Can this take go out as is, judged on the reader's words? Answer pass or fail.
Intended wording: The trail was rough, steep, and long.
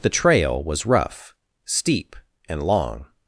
pass